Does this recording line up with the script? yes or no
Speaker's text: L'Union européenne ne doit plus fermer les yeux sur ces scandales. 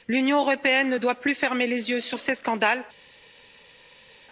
yes